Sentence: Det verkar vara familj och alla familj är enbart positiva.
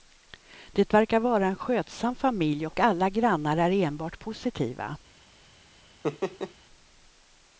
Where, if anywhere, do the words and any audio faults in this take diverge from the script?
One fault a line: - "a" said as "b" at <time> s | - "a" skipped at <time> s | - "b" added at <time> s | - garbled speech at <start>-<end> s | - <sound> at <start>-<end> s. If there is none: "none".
- "en skötsam" added at 1.5 s
- "familj" said as "grannar" at 3.1 s
- laugh at 6.0-6.5 s